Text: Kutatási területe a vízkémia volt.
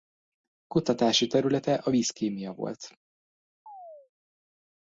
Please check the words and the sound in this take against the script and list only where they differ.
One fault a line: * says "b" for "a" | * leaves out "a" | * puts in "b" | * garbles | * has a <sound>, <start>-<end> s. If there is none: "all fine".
* has a chirp, 3.7-4.1 s